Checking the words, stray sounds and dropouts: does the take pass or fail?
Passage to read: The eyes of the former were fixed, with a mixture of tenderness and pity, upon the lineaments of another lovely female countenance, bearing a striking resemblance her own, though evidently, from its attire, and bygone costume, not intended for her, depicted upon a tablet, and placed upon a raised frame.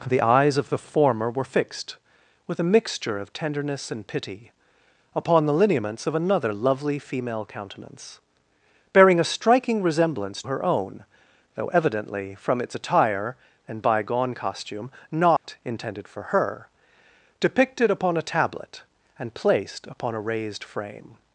fail